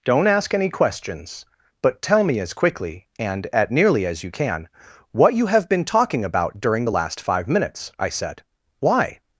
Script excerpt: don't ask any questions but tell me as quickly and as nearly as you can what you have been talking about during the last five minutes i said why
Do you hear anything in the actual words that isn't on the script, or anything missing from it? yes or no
yes